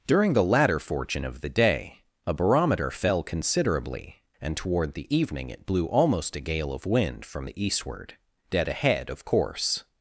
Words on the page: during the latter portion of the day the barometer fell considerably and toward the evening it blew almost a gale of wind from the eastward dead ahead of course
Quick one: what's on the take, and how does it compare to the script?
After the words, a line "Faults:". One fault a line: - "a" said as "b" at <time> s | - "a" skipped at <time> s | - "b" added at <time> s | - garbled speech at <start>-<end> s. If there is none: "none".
during the latter fortune of the day a barometer fell considerably and toward the evening it blew almost a gale of wind from the eastward dead ahead of course
Faults:
- "portion" said as "fortune" at 0.8 s
- "the" said as "a" at 2.3 s